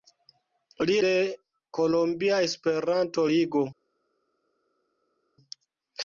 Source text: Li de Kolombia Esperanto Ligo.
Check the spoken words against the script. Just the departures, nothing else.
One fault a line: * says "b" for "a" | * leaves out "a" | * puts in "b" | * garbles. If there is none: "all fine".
all fine